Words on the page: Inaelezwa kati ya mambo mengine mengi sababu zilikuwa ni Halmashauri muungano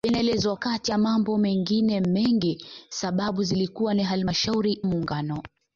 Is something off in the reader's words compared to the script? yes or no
no